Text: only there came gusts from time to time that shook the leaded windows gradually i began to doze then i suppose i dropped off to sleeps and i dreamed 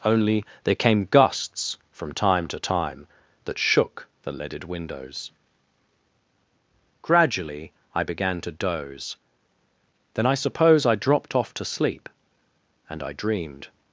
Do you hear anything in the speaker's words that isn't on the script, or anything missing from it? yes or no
yes